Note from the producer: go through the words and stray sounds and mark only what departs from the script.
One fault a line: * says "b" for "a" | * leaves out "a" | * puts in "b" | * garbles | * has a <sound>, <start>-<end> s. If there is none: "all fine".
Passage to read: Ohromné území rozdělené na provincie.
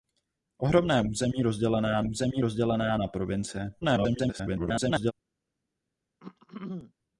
* puts in "území rozdělené"
* garbles
* has a throat clearing, 6.2-6.9 s